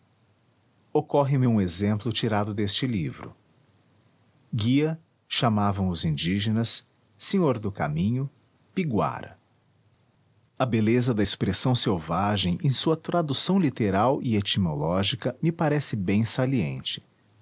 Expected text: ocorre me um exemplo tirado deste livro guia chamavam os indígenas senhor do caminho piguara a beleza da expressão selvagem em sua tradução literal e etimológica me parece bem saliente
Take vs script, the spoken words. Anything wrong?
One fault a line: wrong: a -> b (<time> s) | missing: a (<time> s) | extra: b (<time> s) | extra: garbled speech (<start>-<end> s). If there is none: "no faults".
no faults